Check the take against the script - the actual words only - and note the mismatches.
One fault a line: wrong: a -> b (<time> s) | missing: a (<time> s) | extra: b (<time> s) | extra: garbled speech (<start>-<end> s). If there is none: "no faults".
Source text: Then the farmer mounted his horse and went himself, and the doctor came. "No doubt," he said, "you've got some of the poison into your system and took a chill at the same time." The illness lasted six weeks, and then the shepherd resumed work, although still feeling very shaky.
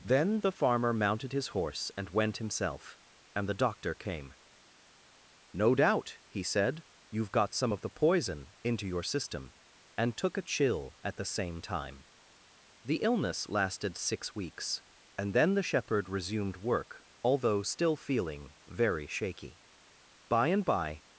extra: By and by (20.3 s)